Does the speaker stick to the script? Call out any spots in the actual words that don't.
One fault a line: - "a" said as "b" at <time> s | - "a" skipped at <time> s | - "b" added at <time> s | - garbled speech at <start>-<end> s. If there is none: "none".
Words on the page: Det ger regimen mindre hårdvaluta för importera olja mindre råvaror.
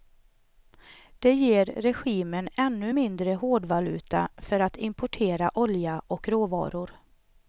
- "ännu" added at 2.5 s
- "att" added at 4.6 s
- "mindre" said as "och" at 6.1 s